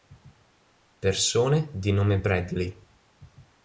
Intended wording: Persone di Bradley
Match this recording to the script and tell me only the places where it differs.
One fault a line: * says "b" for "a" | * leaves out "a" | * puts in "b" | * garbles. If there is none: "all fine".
* puts in "nome"